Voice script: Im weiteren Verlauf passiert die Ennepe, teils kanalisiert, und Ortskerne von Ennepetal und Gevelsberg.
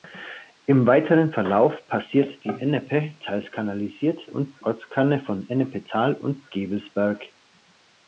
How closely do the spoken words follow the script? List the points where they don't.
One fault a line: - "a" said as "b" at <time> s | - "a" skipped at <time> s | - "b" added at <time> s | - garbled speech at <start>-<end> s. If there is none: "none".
none